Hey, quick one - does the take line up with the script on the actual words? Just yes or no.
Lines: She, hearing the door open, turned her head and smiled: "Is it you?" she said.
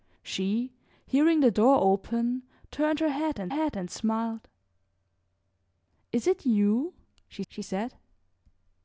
no